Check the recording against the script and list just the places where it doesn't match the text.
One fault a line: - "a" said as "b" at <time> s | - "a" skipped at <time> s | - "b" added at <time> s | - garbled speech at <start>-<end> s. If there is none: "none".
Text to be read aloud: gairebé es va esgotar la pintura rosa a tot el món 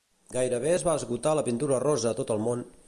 none